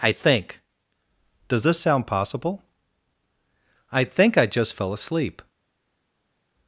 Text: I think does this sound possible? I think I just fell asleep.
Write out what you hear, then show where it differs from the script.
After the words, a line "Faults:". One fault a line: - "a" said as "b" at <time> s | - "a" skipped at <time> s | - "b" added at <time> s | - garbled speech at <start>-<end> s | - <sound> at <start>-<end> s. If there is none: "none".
I think does this sound possible? I think I just fell asleep.
Faults:
none